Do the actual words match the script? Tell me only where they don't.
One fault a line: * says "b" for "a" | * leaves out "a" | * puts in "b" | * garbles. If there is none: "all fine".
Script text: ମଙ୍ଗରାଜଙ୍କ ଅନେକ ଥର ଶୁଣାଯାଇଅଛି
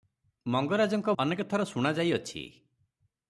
all fine